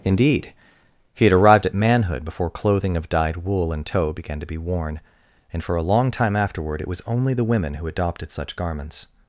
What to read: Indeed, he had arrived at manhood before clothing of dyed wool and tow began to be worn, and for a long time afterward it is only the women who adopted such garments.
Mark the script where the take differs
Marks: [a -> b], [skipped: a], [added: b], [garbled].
Indeed, he had arrived at manhood before clothing of dyed wool and tow began to be worn, and for a long time afterward it [is -> was] only the women who adopted such garments.